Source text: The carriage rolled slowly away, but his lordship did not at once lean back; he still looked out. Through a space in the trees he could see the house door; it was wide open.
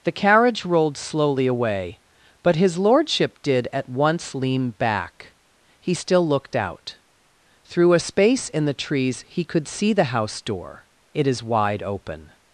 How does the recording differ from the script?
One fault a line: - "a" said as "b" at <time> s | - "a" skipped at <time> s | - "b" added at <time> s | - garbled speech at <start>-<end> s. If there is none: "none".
- "not" skipped at 3.7 s
- "was" said as "is" at 11.3 s